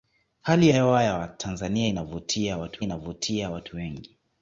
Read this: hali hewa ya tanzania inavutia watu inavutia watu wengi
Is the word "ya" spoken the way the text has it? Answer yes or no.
yes